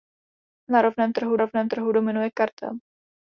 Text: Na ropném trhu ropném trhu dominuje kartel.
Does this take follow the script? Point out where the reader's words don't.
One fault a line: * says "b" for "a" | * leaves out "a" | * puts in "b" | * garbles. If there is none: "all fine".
all fine